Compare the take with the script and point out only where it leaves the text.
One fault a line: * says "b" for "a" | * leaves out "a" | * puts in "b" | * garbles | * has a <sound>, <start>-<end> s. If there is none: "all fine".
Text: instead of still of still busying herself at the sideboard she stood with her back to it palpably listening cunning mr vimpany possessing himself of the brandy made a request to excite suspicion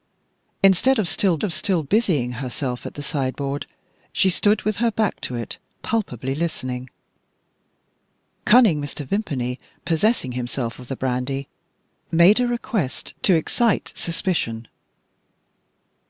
all fine